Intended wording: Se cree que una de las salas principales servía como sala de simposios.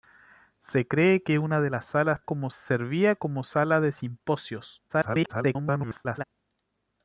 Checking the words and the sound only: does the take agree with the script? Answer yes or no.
no